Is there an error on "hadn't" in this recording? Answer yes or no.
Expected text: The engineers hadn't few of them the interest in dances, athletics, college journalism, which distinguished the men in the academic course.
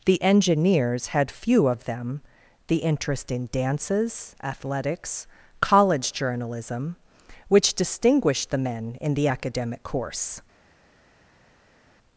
yes